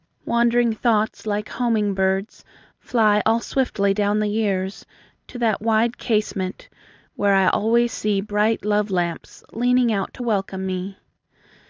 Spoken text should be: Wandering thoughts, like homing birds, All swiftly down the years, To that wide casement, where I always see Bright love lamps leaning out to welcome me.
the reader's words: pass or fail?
fail